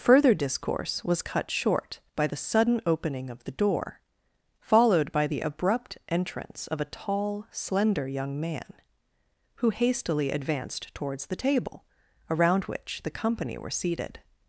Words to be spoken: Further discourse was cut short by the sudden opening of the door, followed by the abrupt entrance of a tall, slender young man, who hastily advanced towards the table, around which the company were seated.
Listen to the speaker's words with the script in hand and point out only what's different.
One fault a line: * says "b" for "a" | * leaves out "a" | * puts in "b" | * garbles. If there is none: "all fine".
all fine